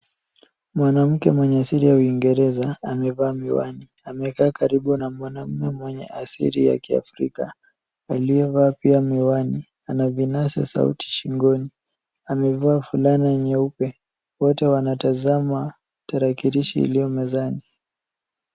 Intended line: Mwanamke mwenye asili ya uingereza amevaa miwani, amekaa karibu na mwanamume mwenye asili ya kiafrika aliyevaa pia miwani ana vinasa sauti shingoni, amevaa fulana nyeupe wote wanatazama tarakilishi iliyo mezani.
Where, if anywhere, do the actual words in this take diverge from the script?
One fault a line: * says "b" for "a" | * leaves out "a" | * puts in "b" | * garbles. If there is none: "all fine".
all fine